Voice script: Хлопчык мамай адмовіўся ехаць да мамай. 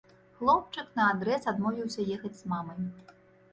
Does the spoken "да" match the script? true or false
false